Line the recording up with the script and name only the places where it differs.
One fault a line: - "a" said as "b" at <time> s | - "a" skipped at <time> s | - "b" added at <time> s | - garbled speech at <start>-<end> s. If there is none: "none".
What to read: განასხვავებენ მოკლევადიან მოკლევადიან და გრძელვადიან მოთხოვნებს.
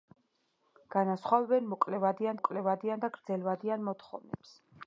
none